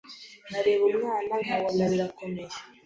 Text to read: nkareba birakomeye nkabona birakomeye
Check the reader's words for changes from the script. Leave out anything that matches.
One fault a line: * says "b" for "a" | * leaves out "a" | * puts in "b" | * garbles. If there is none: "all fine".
* says "umwana" for "birakomeye"